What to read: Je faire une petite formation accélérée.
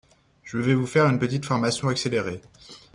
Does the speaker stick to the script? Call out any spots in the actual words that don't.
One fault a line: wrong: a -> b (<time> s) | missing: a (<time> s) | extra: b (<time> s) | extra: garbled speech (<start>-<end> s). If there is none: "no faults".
extra: vais vous (0.6 s)